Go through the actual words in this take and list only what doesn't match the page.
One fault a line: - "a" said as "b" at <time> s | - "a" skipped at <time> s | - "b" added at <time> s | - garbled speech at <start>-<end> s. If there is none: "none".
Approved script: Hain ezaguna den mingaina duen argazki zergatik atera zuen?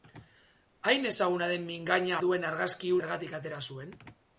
none